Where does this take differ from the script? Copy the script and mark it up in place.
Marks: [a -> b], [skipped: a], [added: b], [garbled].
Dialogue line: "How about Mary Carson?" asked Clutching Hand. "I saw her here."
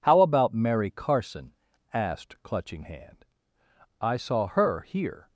"How about Mary Carson?" asked Clutching Hand. "I saw her here."